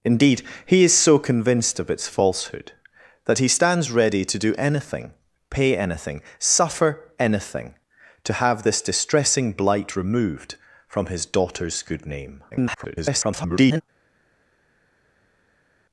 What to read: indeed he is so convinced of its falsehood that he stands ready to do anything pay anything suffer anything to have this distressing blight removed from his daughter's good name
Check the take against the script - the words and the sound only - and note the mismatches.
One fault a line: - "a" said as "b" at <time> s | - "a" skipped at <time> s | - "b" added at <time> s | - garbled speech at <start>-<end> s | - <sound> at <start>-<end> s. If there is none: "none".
- garbled speech at 12.5-13.8 s